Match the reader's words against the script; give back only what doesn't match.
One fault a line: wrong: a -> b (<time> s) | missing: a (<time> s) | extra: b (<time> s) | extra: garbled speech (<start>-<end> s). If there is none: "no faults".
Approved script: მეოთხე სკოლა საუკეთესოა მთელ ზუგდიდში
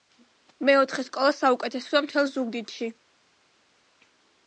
no faults